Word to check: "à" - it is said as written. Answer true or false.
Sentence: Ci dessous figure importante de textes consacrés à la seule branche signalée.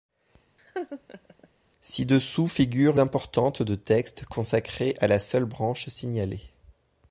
true